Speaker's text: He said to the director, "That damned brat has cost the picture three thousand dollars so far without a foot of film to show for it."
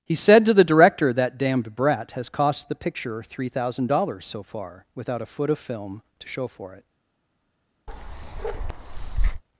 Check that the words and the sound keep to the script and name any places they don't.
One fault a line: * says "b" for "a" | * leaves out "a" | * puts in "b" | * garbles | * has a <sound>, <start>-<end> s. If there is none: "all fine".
* has a bark, 7.9-9.4 s